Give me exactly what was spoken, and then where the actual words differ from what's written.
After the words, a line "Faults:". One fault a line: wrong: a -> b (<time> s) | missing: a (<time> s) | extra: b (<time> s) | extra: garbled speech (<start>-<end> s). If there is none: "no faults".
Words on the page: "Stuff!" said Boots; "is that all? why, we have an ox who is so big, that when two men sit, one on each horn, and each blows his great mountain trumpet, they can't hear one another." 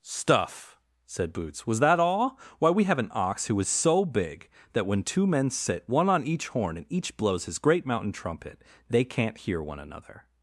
"Stuff!" said Boots; "was that all? why, we have an ox who is so big, that when two men sit, one on each horn, and each blows his great mountain trumpet, they can't hear one another."
Faults:
wrong: is -> was (1.7 s)